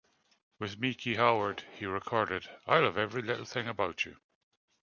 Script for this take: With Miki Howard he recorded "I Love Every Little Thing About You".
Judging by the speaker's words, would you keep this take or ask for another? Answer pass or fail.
pass